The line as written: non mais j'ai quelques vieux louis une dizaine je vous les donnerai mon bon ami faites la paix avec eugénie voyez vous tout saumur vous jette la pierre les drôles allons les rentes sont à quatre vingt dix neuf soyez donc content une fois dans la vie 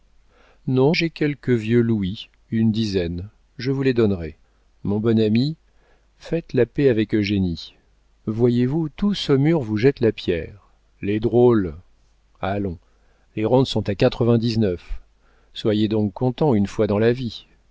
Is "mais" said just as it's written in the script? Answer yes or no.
no